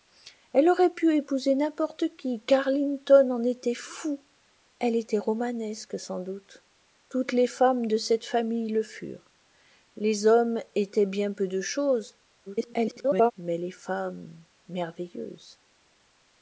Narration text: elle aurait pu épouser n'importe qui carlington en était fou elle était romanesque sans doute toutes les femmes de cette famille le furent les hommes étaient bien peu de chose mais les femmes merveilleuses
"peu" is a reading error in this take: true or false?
false